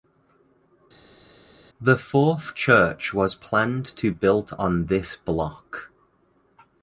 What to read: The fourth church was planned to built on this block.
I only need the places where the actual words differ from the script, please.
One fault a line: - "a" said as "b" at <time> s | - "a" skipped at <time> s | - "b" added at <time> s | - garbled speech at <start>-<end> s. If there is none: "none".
none